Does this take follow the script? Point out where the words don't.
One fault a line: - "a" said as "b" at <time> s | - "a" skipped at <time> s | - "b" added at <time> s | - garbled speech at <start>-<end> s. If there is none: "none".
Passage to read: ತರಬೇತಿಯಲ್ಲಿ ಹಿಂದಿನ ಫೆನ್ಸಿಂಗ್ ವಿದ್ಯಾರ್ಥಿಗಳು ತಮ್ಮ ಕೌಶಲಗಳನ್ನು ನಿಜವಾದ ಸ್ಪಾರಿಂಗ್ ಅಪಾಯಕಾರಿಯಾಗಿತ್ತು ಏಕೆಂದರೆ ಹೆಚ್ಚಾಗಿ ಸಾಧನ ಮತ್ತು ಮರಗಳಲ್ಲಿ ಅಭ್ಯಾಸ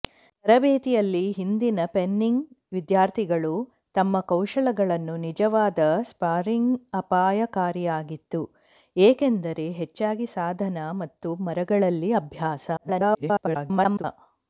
- garbled speech at 12.8-14.0 s